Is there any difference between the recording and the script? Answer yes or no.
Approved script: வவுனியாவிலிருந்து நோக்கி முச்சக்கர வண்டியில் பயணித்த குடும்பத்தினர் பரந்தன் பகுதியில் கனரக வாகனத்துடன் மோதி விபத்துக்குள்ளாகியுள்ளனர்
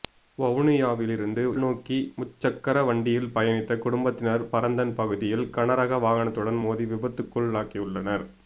no